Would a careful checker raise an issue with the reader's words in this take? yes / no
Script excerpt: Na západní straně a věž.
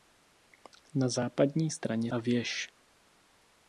no